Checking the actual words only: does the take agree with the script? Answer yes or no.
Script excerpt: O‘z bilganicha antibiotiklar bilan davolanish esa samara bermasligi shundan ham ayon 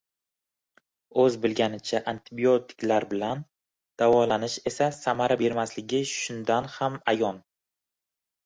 yes